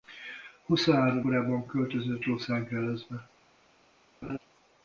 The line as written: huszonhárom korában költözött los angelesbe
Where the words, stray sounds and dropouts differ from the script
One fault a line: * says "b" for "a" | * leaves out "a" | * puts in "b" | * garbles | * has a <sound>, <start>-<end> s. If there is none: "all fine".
* has a laugh, 4.2-4.4 s